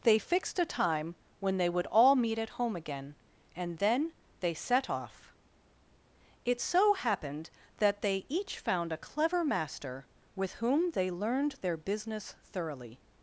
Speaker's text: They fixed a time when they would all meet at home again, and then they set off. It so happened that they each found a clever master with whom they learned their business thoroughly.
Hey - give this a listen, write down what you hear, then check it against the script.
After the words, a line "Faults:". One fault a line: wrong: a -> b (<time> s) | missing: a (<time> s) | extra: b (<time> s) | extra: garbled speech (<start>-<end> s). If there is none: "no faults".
They fixed a time when they would all meet at home again, and then they set off. It so happened that they each found a clever master with whom they learned their business thoroughly.
Faults:
no faults